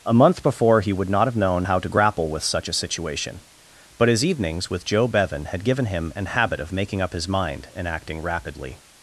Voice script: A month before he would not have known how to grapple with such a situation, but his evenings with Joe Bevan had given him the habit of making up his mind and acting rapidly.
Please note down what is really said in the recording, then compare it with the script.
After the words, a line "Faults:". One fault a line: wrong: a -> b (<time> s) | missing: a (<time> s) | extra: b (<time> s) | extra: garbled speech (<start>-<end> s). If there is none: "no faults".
A month before he would not have known how to grapple with such a situation, but his evenings with Joe Bevan had given him an habit of making up his mind and acting rapidly.
Faults:
wrong: the -> an (6.1 s)